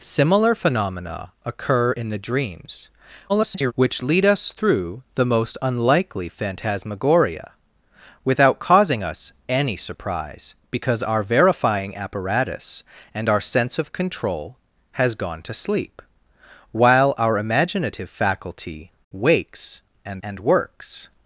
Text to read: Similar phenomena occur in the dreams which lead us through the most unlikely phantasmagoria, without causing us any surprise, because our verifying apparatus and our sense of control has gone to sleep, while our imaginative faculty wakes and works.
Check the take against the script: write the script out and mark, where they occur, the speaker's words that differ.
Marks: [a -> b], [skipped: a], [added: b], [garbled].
Similar phenomena occur in the dreams [garbled] which lead us through the most unlikely phantasmagoria, without causing us any surprise, because our verifying apparatus and our sense of control has gone to sleep, while our imaginative faculty wakes and [added: and] works.